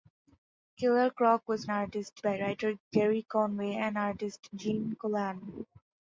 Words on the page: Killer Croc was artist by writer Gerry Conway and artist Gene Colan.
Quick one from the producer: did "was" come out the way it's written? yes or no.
yes